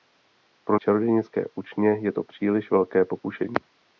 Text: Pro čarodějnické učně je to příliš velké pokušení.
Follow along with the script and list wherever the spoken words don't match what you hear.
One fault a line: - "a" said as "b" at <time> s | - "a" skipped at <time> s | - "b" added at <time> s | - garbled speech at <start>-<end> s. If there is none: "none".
none